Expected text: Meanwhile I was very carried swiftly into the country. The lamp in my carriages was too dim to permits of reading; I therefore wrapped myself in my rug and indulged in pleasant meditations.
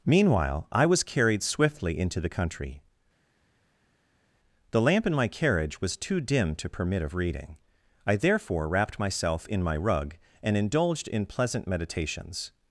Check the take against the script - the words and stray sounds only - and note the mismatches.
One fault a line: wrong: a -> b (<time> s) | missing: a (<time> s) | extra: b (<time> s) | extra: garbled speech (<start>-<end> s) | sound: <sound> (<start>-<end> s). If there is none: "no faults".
missing: very (1.0 s)
wrong: carriages -> carriage (5.3 s)
wrong: permits -> permit (6.7 s)